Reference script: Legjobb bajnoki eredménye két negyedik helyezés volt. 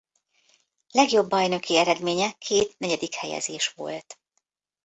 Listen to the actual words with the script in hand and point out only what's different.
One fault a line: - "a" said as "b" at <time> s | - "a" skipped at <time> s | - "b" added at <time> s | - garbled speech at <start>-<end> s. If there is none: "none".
none